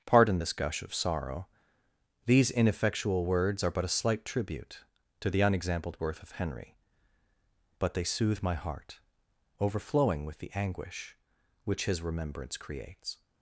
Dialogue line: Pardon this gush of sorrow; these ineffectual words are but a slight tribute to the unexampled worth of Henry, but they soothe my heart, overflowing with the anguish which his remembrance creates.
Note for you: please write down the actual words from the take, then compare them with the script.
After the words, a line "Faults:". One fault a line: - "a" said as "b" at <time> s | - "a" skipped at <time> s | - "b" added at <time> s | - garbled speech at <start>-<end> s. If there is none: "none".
Pardon this gush of sorrow; these ineffectual words are but a slight tribute to the unexampled worth of Henry, but they soothe my heart, overflowing with the anguish which his remembrance creates.
Faults:
none